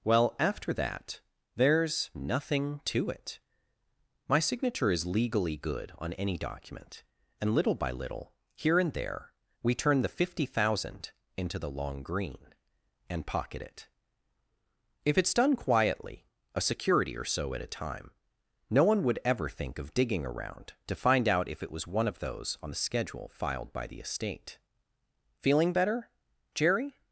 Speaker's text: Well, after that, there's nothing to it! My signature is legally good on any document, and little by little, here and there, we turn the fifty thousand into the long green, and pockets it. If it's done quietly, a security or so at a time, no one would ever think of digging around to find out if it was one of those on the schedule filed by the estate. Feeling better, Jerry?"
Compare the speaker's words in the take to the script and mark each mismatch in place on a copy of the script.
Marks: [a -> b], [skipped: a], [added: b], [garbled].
Well, after that, there's nothing to it! My signature is legally good on any document, and little by little, here and there, we turn the fifty thousand into the long green, and [pockets -> pocket] it. If it's done quietly, a security or so at a time, no one would ever think of digging around to find out if it was one of those on the schedule filed by the estate. Feeling better, Jerry?"